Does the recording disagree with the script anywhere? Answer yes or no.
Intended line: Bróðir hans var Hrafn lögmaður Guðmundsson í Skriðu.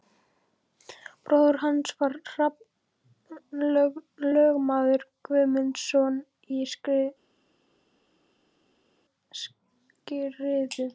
no